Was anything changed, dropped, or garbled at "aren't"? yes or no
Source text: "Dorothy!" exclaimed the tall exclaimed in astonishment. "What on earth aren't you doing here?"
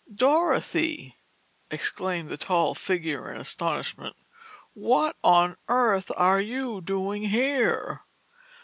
yes